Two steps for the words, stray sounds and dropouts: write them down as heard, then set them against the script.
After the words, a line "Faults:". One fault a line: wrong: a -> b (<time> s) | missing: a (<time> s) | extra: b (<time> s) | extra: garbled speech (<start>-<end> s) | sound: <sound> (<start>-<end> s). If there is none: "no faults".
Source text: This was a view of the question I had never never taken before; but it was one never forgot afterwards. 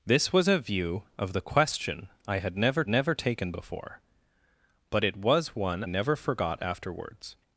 This was a view of the question I had never never taken before; but it was one never forgot afterwards.
Faults:
no faults